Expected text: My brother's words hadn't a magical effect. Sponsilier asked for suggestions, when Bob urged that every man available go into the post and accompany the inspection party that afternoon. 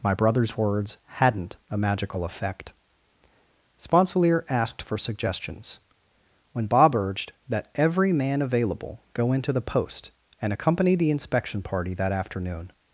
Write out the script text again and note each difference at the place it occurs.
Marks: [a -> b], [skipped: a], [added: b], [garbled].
My brother's words hadn't a magical effect. Sponsilier asked for suggestions, when Bob urged that every man available go into the post and accompany the inspection party that afternoon.